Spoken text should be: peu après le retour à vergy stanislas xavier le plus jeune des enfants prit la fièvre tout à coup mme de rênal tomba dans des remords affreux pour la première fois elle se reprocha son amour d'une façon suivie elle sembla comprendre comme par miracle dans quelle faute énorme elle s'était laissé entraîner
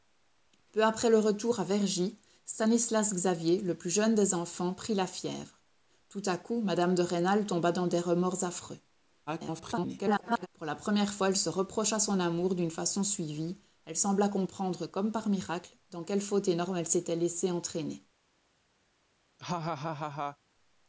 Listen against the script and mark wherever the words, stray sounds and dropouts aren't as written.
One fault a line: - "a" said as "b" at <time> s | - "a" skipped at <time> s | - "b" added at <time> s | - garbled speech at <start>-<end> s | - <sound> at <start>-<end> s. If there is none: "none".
- garbled speech at 9.3-10.5 s
- laugh at 19.4-20.4 s